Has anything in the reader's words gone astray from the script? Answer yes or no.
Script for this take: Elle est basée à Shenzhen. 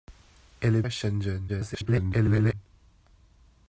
yes